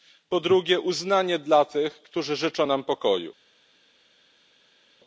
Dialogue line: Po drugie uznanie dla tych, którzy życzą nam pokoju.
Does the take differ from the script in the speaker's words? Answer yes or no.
no